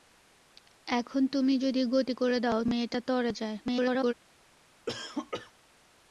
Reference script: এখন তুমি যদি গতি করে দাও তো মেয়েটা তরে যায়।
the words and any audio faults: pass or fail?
fail